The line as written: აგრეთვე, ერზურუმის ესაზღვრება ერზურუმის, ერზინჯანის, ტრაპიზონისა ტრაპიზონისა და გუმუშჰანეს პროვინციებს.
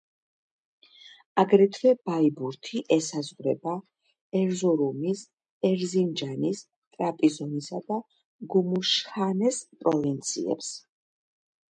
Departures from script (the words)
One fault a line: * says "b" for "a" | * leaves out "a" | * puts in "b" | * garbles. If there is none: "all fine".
* says "ბაიბურთი" for "ერზურუმის"
* leaves out "ტრაპიზონისა"